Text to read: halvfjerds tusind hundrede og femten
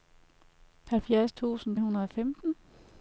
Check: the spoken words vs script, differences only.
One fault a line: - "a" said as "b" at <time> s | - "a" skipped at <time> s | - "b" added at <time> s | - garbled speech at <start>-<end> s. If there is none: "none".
none